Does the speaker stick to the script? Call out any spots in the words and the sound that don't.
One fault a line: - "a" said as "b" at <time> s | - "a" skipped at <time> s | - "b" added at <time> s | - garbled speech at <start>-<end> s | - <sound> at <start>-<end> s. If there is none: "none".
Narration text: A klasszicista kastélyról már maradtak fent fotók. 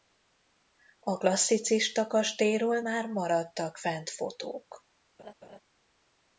- laugh at 5.2-5.6 s